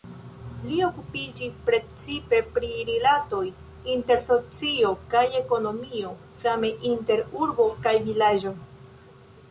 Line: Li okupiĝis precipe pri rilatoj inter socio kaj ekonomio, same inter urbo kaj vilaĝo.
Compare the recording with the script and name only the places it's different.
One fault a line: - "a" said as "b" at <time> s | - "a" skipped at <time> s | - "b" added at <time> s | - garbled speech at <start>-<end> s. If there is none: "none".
none